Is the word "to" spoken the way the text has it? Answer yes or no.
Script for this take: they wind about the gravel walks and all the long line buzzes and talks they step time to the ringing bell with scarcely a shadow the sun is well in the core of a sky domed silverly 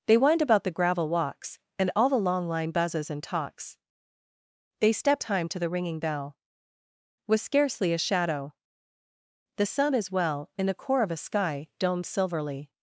yes